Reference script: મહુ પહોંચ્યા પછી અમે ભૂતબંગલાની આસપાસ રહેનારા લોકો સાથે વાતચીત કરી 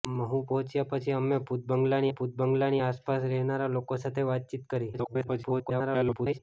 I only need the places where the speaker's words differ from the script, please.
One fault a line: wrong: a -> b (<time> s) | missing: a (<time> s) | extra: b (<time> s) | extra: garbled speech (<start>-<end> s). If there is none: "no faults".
extra: ભૂતબંગલાની (2.1 s)
extra: garbled speech (4.9-6.4 s)